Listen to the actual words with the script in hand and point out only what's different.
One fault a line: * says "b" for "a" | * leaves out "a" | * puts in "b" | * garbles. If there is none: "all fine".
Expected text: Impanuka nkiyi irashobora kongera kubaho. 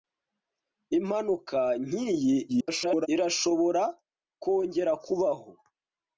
* garbles